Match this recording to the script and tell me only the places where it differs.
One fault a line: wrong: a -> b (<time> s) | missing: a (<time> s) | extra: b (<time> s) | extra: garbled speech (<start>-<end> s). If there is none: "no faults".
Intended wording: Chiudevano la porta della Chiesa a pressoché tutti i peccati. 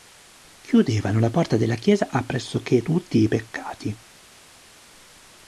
no faults